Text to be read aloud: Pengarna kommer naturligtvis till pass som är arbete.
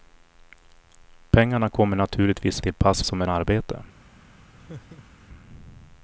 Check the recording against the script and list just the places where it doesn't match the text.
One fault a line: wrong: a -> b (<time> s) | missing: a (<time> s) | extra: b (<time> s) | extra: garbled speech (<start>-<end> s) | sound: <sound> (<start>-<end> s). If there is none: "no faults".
sound: laugh (4.6-5.3 s)